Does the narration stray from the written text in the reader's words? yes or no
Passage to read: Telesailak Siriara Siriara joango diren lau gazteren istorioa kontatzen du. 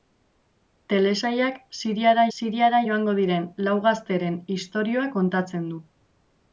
no